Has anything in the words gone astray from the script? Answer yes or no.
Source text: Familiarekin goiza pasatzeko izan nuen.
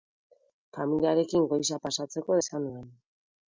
no